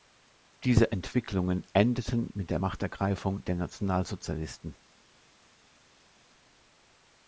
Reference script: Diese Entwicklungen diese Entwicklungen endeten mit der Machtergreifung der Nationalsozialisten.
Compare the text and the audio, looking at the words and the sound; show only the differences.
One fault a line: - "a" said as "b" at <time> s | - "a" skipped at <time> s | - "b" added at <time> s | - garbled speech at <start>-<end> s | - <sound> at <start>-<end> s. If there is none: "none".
- "diese Entwicklungen" skipped at 1.6 s